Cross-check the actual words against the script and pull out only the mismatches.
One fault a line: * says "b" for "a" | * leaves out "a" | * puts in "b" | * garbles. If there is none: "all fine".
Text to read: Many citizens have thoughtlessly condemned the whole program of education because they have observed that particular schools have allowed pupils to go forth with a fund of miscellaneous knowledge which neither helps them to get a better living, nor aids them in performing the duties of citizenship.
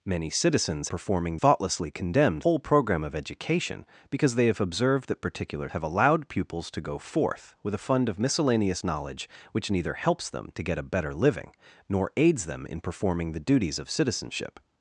* says "performing" for "have"
* leaves out "the"
* leaves out "schools"